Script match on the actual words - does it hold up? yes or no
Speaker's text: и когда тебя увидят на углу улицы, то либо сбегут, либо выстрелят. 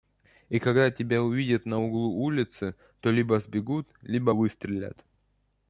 yes